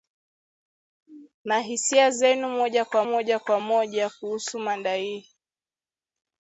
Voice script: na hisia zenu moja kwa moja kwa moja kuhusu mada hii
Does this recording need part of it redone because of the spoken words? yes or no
no